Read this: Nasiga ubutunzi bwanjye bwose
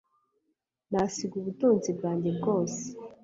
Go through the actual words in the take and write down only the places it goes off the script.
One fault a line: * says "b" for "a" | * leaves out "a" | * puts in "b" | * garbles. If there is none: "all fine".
all fine